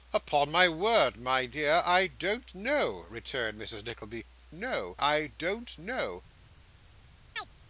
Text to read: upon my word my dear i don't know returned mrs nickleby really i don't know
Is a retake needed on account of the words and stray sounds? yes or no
yes